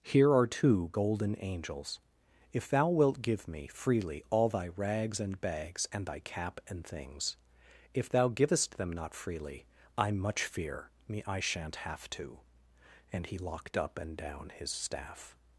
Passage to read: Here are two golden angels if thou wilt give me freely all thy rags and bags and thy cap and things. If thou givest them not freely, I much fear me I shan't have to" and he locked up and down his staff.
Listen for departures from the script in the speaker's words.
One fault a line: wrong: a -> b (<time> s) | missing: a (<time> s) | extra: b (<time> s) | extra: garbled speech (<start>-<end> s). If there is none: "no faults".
no faults